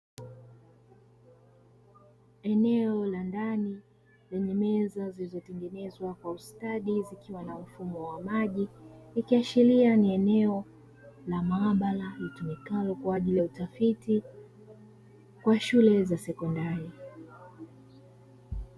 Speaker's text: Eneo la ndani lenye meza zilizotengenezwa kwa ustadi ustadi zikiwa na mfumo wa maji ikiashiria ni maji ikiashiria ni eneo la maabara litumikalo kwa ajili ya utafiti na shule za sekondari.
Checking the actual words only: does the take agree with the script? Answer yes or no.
no